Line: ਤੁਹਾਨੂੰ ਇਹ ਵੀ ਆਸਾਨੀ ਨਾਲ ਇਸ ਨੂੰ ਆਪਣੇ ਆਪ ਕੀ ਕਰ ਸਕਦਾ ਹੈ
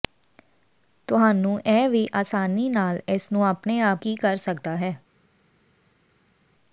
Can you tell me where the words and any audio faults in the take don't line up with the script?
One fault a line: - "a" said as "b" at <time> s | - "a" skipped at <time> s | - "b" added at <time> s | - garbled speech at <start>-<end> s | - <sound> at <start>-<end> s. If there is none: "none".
none